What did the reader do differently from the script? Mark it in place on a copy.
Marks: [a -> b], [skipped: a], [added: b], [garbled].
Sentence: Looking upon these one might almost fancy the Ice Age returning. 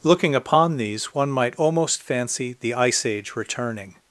Looking upon these one might almost fancy the Ice Age returning.